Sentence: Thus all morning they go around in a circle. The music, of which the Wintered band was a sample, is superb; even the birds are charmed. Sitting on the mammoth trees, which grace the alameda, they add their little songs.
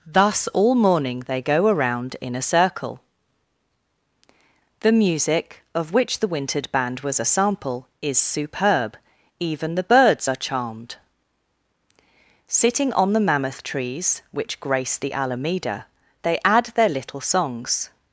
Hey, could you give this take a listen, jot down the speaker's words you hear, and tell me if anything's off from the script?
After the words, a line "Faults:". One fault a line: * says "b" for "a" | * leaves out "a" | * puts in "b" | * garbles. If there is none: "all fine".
Thus all morning they go around in a circle. The music, of which the Wintered band was a sample, is superb; even the birds are charmed. Sitting on the mammoth trees, which grace the alameda, they add their little songs.
Faults:
all fine